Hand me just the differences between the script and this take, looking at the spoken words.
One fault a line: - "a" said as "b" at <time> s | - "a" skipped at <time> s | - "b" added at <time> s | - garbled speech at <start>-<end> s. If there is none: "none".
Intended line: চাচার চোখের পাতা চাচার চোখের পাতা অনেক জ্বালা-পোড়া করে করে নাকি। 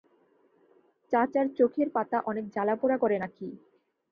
- "চাচার চোখের পাতা" skipped at 2.2 s
- "করে" skipped at 3.2 s